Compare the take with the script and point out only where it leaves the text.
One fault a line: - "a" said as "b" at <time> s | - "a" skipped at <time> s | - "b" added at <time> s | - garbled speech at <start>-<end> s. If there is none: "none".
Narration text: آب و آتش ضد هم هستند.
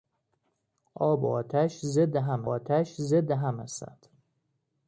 - "آتش ضد هم" added at 2.4 s